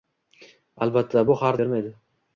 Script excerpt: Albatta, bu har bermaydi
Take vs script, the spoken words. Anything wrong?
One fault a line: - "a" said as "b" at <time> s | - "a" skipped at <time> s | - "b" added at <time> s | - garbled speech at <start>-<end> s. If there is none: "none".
none